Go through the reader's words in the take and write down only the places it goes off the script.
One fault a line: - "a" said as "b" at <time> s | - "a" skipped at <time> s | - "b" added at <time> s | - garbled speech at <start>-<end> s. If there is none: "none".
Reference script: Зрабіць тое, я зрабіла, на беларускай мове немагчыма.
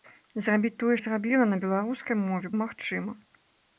none